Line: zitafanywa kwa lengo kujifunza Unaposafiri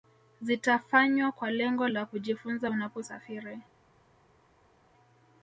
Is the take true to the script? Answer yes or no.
no